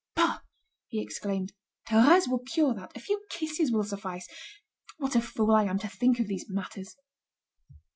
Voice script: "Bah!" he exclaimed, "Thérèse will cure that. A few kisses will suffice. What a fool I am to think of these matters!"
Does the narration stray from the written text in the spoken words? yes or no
no